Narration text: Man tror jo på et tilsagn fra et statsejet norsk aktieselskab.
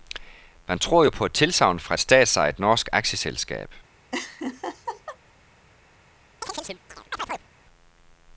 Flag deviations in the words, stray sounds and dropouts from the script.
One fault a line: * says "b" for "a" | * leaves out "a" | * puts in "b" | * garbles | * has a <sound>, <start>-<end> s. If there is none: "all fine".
* has a laugh, 4.1-5.2 s
* has a chirp, 6.4-7.5 s